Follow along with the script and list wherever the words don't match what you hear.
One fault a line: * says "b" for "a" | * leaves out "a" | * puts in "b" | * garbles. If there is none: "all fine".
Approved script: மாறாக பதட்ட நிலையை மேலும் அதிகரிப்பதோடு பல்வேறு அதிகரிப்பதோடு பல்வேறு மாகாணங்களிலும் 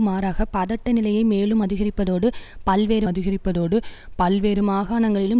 all fine